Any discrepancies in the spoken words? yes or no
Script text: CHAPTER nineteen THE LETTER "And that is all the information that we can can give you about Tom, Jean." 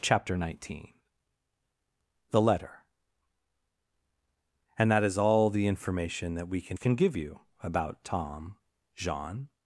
no